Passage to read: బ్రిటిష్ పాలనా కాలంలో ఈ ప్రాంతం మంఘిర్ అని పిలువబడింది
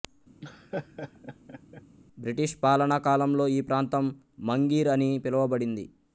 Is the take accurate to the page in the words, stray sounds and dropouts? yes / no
no